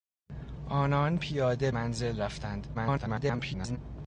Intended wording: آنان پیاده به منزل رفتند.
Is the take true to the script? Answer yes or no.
no